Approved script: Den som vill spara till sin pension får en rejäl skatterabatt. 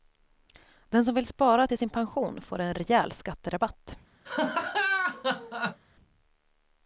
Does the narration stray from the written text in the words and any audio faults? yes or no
yes